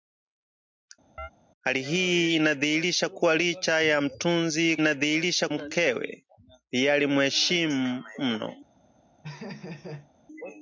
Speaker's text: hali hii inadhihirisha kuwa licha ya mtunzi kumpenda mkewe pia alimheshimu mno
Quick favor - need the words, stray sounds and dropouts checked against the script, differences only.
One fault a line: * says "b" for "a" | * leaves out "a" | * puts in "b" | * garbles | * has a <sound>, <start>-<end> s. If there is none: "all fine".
* has a chirp, 1.2-1.3 s
* says "inadhihirisha" for "kumpenda"
* has a laugh, 9.2-10.1 s